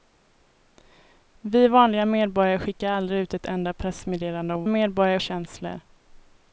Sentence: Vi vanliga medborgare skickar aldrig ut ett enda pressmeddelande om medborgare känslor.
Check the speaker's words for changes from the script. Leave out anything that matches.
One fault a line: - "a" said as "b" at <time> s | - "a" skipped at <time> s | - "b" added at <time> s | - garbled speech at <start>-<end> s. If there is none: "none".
none